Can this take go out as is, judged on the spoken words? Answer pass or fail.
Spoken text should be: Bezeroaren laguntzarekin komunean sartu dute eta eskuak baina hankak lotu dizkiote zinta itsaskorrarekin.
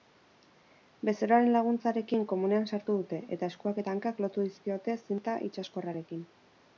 fail